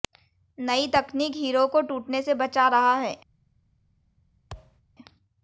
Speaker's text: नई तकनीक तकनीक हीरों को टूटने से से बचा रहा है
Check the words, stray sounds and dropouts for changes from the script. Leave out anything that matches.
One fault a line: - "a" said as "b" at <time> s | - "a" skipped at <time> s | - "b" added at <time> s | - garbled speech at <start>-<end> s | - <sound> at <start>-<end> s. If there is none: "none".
- "तकनीक" skipped at 1.4 s
- "से" skipped at 2.3 s
- thud at 4.5-4.8 s